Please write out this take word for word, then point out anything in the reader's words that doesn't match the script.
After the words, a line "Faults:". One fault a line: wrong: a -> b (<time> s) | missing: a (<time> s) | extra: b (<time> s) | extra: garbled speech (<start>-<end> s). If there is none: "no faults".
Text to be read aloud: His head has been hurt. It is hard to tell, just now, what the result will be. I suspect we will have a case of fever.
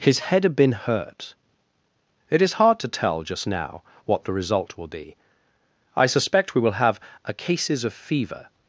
His head had been hurt. It is hard to tell, just now, what the result will be. I suspect we will have a cases of fever.
Faults:
wrong: has -> had (0.4 s)
wrong: case -> cases (7.3 s)